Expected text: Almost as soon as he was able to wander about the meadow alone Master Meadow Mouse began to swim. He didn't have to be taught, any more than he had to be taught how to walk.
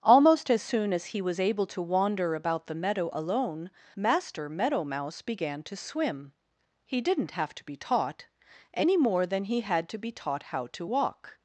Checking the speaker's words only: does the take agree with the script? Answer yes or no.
yes